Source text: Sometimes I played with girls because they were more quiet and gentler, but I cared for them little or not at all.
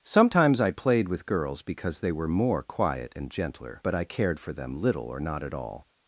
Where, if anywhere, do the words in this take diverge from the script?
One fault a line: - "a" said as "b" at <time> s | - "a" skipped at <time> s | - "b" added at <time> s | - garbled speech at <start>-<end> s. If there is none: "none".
none